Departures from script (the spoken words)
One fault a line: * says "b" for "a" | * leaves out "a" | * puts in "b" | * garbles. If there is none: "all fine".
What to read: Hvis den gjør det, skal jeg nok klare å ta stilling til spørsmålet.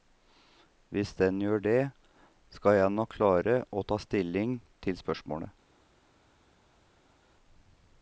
all fine